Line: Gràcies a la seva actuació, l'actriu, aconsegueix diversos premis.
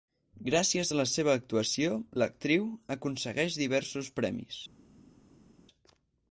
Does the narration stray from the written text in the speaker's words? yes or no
no